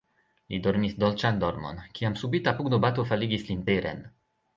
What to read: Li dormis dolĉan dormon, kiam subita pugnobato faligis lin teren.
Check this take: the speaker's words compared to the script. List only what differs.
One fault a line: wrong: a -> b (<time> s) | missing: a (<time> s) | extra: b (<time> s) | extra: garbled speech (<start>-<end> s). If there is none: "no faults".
no faults